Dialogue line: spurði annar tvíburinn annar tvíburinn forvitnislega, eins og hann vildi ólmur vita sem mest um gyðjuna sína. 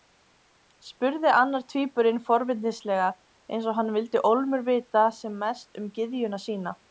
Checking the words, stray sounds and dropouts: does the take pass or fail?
fail